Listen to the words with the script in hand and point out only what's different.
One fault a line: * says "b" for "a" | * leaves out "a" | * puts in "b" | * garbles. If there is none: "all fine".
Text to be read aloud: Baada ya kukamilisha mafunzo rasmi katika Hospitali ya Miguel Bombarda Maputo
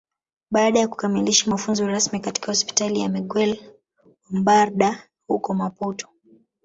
* puts in "huko"